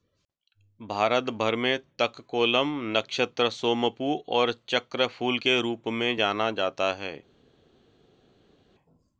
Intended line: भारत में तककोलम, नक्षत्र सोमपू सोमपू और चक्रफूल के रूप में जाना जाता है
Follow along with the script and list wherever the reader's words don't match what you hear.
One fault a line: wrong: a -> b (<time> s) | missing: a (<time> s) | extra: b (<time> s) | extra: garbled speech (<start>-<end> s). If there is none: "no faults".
extra: भर (1.3 s)
missing: सोमपू (4.1 s)